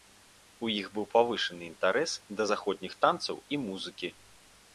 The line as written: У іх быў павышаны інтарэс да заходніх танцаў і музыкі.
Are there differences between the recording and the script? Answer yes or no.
no